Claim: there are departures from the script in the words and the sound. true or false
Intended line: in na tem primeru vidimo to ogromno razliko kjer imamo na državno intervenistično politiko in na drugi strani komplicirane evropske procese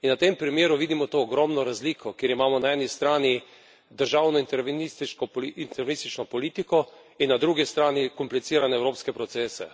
true